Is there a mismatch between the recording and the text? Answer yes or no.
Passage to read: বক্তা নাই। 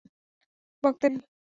no